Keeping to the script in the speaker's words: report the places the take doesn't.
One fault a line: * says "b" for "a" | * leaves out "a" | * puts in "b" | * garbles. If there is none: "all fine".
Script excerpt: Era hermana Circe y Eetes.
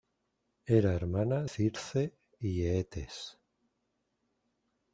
all fine